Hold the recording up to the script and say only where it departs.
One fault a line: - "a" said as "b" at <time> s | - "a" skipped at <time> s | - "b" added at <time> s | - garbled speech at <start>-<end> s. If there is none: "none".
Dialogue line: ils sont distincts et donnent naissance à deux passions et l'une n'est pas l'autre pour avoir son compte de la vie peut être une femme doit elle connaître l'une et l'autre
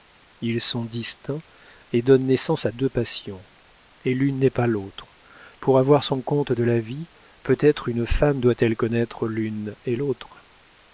none